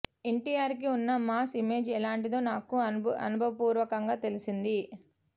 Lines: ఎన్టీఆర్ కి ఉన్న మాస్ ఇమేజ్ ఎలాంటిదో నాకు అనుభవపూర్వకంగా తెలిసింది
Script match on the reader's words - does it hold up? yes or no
yes